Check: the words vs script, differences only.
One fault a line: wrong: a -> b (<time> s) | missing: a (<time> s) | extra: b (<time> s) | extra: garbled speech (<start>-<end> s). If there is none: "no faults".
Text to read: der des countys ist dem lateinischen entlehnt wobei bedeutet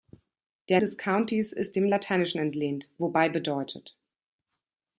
no faults